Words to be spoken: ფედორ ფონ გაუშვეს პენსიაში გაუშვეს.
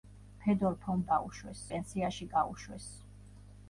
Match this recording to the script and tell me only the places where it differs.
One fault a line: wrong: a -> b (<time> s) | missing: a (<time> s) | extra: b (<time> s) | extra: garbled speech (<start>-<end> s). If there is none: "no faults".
no faults